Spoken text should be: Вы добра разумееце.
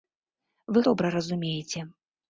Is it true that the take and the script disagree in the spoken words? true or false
false